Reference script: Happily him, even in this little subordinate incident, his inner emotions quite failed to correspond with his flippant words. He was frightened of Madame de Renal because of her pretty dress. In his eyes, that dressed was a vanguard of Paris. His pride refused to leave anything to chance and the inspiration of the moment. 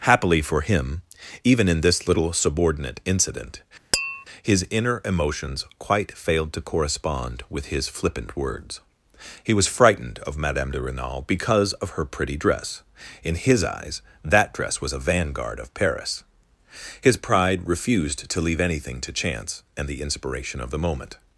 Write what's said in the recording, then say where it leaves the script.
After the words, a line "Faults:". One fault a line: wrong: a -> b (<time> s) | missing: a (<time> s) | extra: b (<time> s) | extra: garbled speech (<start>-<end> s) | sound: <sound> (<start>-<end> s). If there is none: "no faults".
Happily for him, even in this little subordinate incident, his inner emotions quite failed to correspond with his flippant words. He was frightened of Madame de Renal because of her pretty dress. In his eyes, that dress was a vanguard of Paris. His pride refused to leave anything to chance and the inspiration of the moment.
Faults:
extra: for (0.4 s)
sound: tap (3.9-4.2 s)
wrong: dressed -> dress (14.5 s)